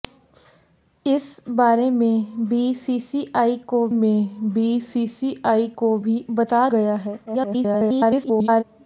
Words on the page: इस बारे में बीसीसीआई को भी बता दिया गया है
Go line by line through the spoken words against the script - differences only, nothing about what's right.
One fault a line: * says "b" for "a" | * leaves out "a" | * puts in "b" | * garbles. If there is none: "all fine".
* puts in "में बीसीसीआई को"
* leaves out "दिया"
* garbles